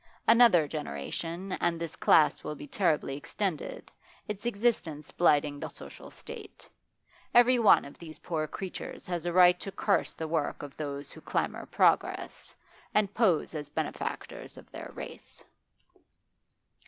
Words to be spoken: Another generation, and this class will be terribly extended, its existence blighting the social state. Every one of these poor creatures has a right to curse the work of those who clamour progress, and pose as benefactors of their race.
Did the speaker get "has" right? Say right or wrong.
right